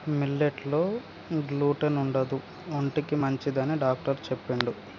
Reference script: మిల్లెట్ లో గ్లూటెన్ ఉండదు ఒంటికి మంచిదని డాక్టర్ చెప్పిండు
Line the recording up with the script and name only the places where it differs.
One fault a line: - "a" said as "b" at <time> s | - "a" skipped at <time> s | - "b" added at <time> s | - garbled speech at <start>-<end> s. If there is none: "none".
none